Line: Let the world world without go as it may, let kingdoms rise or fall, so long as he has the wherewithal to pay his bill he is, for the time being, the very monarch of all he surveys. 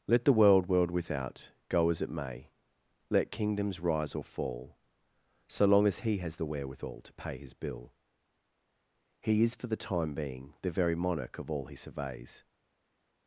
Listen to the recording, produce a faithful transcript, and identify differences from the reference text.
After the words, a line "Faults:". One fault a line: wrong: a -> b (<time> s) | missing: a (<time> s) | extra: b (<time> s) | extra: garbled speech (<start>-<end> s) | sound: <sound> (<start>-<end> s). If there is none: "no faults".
Let the world world without go as it may, let kingdoms rise or fall, so long as he has the wherewithal to pay his bill he is, for the time being, the very monarch of all he surveys.
Faults:
no faults